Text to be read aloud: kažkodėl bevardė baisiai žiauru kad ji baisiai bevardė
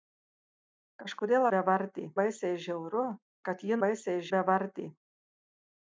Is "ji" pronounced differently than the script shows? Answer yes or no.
no